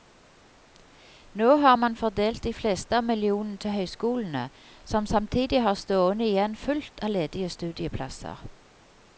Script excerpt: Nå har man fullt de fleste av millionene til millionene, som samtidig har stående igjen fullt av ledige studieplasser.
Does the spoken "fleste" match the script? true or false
true